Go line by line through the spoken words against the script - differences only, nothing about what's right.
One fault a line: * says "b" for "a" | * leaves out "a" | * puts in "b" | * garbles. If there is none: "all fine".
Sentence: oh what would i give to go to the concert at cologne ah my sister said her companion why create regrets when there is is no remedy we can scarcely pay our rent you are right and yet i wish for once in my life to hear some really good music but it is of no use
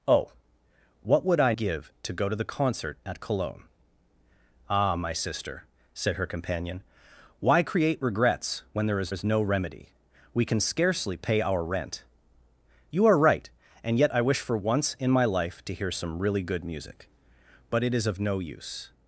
all fine